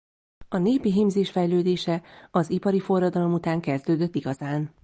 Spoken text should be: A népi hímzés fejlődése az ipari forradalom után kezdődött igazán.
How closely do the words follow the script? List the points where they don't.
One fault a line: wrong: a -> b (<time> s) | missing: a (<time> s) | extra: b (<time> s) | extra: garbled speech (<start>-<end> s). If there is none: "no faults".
no faults